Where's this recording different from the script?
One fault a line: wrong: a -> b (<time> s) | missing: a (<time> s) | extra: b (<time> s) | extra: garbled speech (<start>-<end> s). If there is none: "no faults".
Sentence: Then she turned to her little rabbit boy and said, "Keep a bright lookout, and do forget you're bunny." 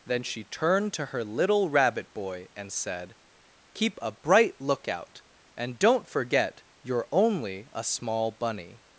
wrong: do -> don't (5.8 s)
extra: only a small (7.1 s)